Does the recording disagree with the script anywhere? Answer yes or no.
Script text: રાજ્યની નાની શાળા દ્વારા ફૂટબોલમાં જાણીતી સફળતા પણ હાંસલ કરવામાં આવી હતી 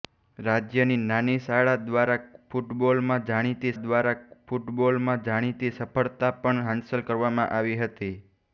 yes